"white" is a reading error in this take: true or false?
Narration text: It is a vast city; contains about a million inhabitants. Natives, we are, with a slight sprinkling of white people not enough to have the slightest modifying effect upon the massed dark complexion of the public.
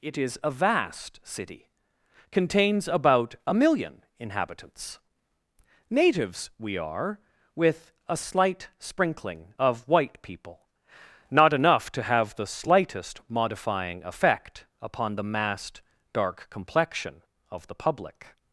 false